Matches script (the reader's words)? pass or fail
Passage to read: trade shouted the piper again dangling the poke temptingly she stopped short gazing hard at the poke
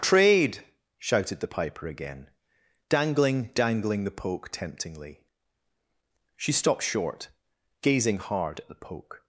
fail